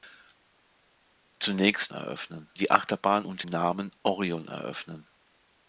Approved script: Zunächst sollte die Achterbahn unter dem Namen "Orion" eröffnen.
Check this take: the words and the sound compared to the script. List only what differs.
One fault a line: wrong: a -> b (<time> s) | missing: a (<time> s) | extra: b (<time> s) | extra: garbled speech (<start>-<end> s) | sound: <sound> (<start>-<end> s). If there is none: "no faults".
wrong: sollte -> eröffnen (1.9 s)
missing: dem (3.5 s)